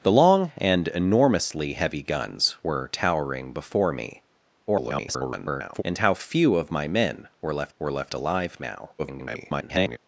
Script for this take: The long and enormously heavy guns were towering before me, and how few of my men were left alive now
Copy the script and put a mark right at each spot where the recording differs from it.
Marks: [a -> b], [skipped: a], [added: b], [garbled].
The long and enormously heavy guns were towering before me, [garbled] and how few of my men were left [added: were left] alive now [garbled]